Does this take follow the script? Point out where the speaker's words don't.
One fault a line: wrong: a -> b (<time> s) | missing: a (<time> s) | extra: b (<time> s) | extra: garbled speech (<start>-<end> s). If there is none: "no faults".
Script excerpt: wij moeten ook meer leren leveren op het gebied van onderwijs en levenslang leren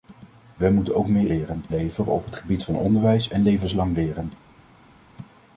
no faults